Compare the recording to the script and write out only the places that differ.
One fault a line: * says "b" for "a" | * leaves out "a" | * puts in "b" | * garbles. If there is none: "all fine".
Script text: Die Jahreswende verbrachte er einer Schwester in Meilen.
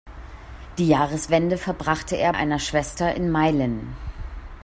all fine